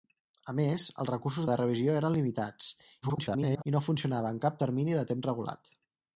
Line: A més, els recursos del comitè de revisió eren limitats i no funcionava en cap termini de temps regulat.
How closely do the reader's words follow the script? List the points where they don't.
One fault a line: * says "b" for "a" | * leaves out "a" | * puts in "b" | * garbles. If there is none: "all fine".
* leaves out "del comitè"
* garbles